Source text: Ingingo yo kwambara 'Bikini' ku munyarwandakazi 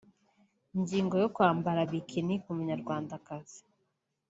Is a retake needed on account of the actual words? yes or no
no